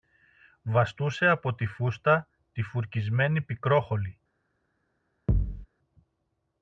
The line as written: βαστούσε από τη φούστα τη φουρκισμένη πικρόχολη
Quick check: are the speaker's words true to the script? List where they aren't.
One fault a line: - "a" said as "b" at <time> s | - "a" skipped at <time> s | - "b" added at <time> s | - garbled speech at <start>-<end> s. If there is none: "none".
none